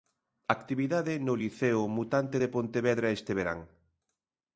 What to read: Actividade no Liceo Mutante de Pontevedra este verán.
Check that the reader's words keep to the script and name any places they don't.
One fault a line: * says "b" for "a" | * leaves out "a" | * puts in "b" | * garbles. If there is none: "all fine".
all fine